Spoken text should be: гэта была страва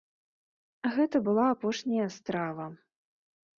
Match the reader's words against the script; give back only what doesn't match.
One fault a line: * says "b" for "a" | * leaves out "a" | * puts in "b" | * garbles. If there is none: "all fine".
* puts in "апошняя"